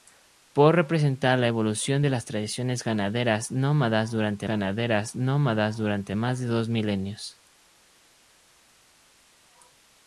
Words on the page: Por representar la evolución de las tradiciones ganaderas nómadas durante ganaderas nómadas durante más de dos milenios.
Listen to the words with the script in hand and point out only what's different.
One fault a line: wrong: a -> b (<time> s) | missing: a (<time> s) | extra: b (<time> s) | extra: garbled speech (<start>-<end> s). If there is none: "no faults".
no faults